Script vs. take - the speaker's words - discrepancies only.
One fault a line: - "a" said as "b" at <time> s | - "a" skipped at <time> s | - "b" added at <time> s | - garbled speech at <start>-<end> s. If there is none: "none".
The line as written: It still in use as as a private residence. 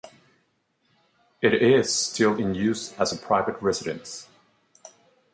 - "is" added at 1.5 s
- "as" skipped at 3.1 s